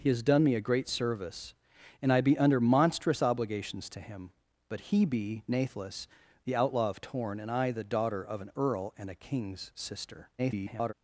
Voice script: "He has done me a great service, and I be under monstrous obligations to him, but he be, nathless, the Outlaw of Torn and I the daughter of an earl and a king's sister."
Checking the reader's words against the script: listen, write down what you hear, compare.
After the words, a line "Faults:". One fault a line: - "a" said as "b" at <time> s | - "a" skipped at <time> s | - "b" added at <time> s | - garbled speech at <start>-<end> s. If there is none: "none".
"He has done me a great service, and I be under monstrous obligations to him, but he be, nathless, the Outlaw of Torn and I the daughter of an earl and a king's sister." [garbled]
Faults:
- garbled speech at 10.4-10.9 s